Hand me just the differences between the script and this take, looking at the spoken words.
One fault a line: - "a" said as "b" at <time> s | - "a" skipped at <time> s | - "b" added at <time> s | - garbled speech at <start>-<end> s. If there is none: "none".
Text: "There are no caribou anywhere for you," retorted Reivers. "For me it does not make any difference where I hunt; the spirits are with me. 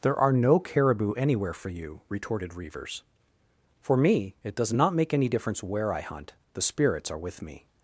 none